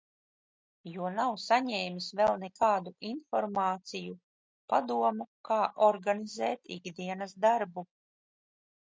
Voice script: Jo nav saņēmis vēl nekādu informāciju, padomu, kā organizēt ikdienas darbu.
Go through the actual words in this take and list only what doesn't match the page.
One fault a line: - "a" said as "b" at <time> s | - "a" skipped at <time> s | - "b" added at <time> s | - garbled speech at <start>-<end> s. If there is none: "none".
none